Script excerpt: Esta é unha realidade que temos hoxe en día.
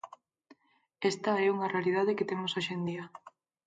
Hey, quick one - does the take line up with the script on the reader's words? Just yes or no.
yes